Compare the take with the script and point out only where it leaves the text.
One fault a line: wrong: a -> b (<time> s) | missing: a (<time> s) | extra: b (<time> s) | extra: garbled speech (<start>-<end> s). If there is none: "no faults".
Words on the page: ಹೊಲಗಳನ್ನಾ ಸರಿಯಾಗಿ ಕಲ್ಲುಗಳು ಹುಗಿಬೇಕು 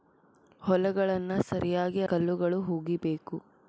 no faults